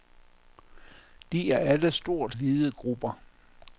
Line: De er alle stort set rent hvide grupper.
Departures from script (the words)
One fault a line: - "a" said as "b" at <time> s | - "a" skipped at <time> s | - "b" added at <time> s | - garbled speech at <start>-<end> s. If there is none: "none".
- "set rent" skipped at 2.4 s